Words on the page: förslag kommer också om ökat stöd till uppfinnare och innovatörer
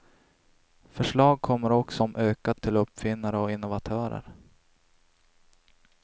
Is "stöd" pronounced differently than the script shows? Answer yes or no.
yes